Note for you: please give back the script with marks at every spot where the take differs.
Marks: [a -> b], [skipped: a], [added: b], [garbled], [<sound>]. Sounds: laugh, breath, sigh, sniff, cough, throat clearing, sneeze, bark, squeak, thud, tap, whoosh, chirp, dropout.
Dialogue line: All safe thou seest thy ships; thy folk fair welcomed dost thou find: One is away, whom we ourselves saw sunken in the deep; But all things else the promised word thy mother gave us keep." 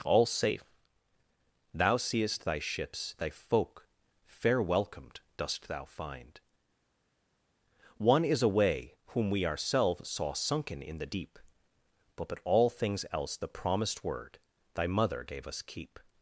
All safe thou seest thy ships; thy folk fair welcomed dost thou find: One is away, whom we ourselves saw sunken in the deep; But [added: but] all things else the promised word thy mother gave us keep."